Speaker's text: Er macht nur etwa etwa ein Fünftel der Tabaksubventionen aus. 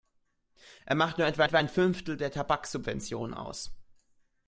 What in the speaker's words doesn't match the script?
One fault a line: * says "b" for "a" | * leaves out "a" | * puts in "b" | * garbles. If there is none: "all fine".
all fine